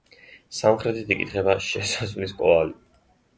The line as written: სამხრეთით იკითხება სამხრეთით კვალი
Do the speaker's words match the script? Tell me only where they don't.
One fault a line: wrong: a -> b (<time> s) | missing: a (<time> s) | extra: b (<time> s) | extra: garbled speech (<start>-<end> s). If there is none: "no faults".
wrong: სამხრეთით -> შესასვლელის (1.7 s)